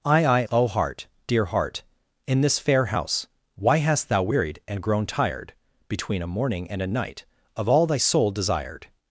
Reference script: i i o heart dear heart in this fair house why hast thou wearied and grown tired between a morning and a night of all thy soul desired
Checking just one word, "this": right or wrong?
right